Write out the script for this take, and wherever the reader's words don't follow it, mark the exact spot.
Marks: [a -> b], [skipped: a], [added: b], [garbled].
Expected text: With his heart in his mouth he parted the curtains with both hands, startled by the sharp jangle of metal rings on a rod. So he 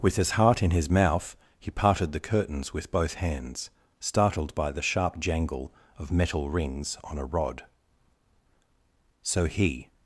With his heart in his mouth he parted the curtains with both hands, startled by the sharp jangle of metal rings on a rod. So he